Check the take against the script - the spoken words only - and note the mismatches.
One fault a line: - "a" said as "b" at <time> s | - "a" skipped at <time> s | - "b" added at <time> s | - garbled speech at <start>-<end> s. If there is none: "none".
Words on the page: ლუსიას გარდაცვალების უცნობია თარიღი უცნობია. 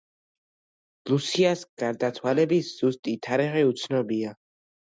- "უცნობია" said as "ზუსტი" at 2.8 s